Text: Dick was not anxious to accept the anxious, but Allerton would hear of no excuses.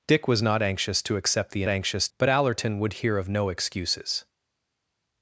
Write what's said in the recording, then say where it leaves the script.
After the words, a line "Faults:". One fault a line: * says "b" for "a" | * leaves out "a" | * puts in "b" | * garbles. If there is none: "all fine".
Dick was not anxious to accept the anxious, but Allerton would hear of no excuses.
Faults:
all fine